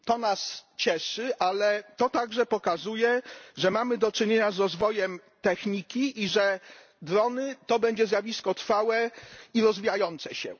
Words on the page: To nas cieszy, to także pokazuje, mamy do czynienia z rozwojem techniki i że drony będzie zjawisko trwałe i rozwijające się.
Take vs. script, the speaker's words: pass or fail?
fail